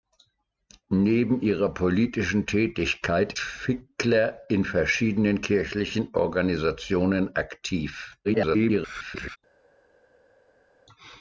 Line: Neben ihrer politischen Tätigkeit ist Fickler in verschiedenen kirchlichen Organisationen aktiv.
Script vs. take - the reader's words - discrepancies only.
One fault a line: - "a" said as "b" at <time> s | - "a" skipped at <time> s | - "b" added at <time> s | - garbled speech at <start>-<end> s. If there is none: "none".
- "ist" skipped at 3.3 s
- garbled speech at 8.2-9.4 s